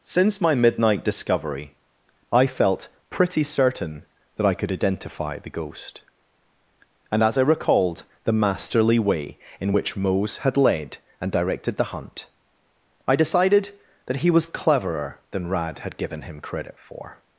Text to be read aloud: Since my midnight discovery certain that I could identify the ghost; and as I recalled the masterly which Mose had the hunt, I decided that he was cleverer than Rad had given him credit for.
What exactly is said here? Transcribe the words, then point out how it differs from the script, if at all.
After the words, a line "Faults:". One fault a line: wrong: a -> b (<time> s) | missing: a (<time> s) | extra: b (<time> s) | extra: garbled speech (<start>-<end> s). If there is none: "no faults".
Since my midnight discovery I felt pretty certain that I could identify the ghost; and as I recalled the masterly way in which Mose had led and directed the hunt, I decided that he was cleverer than Rad had given him credit for.
Faults:
extra: I felt pretty (2.3 s)
extra: way in (9.0 s)
extra: led and directed (10.6 s)